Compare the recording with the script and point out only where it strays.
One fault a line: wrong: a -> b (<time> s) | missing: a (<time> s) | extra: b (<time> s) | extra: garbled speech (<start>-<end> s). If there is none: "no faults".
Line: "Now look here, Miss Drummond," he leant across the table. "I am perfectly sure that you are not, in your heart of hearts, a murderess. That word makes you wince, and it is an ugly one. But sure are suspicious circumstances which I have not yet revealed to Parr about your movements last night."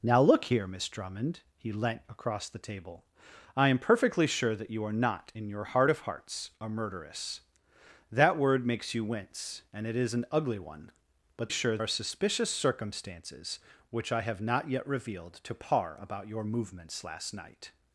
no faults